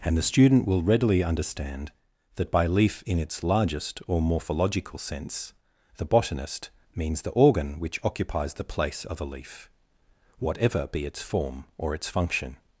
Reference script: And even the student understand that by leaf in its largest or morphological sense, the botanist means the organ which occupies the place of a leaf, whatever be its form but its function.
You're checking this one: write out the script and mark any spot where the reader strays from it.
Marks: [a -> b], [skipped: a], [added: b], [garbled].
And [skipped: even] the student [added: will readily] understand that by leaf in its largest or morphological sense, the botanist means the organ which occupies the place of a leaf, whatever be its form [but -> or] its function.